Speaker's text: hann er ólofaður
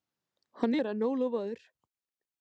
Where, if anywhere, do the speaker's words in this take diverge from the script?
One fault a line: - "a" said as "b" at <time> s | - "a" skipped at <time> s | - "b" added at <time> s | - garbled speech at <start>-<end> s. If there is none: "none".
- "enn" added at 0.9 s